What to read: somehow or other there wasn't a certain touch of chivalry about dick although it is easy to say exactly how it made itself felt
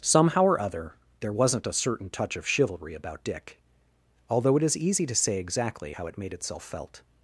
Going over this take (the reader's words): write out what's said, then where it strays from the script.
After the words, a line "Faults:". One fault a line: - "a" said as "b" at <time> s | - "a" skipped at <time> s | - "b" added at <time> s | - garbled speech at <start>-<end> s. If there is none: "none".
somehow or other there wasn't a certain touch of chivalry about dick although it is easy to say exactly how it made itself felt
Faults:
none